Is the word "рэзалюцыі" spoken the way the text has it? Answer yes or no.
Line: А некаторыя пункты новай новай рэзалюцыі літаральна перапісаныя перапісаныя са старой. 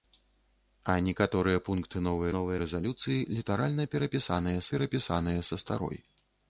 yes